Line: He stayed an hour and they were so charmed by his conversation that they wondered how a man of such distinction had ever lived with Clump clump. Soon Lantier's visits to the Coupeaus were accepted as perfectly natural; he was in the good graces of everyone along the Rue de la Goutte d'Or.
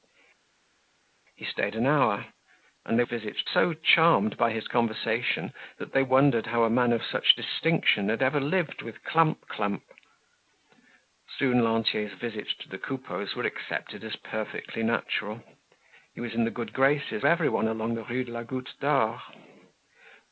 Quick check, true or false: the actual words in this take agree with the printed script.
false